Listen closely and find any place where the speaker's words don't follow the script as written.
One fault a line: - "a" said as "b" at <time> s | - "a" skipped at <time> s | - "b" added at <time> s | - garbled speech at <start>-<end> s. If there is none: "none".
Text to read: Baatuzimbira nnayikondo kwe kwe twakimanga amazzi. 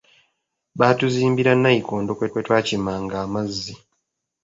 none